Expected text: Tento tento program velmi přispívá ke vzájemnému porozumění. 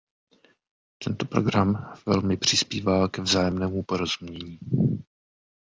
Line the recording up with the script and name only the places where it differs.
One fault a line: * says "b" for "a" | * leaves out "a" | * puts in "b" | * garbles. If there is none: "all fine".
* leaves out "tento"